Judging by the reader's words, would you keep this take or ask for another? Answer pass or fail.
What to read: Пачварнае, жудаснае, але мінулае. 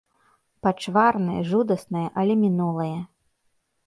pass